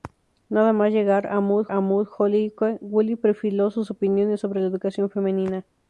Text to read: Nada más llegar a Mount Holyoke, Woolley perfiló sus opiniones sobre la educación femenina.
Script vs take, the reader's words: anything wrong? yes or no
yes